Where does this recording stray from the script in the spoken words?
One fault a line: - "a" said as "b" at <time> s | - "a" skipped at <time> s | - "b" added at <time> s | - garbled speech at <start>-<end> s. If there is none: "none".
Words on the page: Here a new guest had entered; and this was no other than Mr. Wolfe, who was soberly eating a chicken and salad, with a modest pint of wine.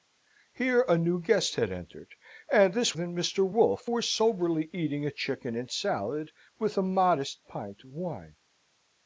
- "was no other" skipped at 3.0 s
- "who" skipped at 3.9 s